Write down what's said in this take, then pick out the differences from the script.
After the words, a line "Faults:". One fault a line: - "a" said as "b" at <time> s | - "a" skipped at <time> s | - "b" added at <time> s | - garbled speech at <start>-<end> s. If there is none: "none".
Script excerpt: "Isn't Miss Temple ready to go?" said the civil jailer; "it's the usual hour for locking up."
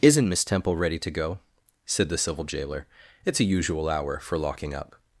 "Isn't Miss Temple ready to go?" said the civil jailer; "it's a usual hour for locking up."
Faults:
- "the" said as "a" at 3.4 s